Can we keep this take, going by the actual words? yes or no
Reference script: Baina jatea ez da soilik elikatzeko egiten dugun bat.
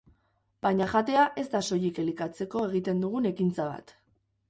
no